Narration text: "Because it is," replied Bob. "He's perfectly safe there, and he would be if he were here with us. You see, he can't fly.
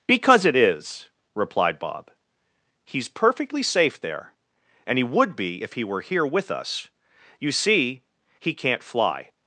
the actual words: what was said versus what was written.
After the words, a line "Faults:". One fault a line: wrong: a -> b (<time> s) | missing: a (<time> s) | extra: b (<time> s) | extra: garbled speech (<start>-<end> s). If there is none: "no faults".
"Because it is," replied Bob. "He's perfectly safe there, and he would be if he were here with us. You see, he can't fly.
Faults:
no faults